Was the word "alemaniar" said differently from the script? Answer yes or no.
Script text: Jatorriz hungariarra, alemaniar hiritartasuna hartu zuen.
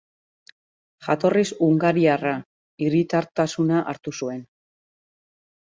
yes